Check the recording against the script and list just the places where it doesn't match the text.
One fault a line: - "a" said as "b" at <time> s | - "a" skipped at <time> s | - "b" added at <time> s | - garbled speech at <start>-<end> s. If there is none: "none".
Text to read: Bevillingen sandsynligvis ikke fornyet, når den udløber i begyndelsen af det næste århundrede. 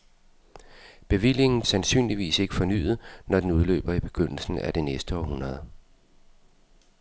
none